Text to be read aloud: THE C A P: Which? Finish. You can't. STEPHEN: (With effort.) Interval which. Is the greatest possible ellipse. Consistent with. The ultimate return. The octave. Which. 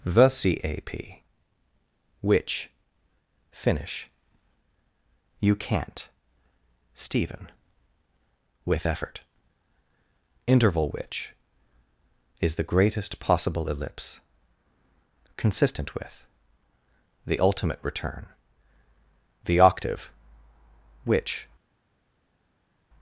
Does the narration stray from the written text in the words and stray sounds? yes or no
no